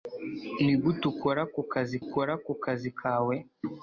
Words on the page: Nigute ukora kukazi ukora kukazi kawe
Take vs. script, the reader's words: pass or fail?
pass